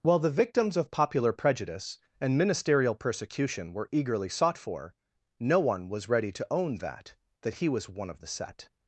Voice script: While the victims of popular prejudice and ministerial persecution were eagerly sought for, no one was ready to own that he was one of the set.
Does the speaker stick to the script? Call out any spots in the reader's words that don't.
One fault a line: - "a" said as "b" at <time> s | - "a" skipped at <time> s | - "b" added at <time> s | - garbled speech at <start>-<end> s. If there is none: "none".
- "that" added at 7.4 s